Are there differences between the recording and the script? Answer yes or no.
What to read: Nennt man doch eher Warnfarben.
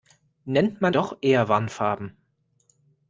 no